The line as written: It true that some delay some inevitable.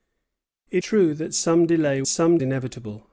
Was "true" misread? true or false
false